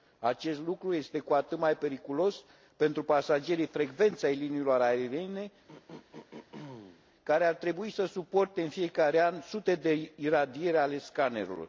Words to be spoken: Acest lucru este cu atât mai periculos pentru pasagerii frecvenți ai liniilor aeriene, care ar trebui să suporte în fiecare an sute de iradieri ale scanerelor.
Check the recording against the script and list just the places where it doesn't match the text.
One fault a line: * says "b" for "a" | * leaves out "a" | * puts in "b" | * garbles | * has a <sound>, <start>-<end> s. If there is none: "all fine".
* has a throat clearing, 5.7-7.1 s